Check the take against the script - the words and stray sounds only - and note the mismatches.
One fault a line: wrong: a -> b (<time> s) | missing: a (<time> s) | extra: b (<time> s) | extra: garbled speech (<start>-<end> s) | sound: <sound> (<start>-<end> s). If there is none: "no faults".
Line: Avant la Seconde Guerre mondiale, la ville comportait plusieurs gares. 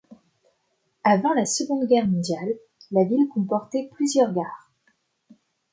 no faults